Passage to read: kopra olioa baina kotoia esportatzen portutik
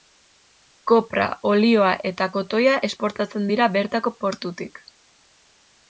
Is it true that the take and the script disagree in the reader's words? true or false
true